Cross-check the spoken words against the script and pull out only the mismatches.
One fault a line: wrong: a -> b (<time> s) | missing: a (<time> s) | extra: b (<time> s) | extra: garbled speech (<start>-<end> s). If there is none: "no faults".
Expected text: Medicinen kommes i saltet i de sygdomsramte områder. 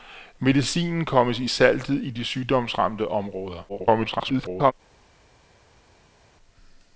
extra: garbled speech (3.7-4.7 s)